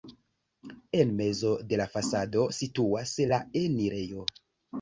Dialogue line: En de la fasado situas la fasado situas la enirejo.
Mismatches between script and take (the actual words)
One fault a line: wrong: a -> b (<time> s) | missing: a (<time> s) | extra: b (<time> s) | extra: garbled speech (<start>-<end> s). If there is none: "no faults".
extra: mezo (1.2 s)
missing: fasado situas la (3.4 s)